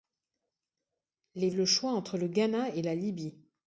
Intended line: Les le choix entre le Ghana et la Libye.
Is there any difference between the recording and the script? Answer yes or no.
no